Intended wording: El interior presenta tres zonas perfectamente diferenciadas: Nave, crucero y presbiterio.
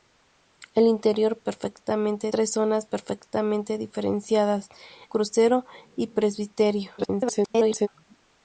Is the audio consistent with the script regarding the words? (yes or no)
no